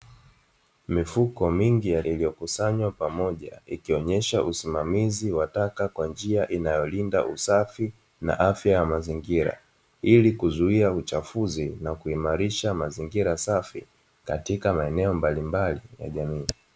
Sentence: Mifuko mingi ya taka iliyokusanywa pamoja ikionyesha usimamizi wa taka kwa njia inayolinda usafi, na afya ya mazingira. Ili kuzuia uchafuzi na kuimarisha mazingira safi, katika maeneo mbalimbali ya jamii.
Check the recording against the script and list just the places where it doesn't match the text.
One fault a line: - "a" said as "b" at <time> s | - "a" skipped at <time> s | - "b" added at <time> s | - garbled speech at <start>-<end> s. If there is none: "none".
- "taka" skipped at 2.0 s